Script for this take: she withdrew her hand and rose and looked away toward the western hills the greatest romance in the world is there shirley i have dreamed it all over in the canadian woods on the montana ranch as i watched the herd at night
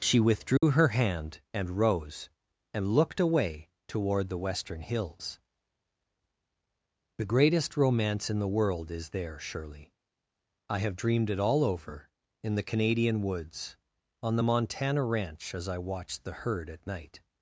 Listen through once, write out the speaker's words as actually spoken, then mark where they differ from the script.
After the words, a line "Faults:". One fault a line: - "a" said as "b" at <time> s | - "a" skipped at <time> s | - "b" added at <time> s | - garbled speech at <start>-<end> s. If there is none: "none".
she withdrew her hand and rose and looked away toward the western hills the greatest romance in the world is there shirley i have dreamed it all over in the canadian woods on the montana ranch as i watched the herd at night
Faults:
none